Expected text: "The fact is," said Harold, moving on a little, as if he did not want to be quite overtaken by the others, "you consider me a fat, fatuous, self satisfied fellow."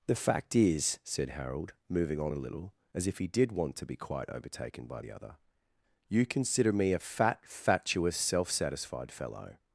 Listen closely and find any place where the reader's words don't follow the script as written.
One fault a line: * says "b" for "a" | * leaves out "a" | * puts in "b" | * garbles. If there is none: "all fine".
* leaves out "not"
* says "other" for "others"